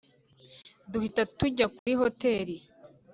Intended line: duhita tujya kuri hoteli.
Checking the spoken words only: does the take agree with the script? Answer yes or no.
yes